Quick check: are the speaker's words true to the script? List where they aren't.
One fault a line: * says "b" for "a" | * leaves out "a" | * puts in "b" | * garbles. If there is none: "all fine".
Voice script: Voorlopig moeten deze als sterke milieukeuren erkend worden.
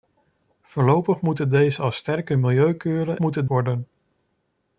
* says "moeten" for "erkend"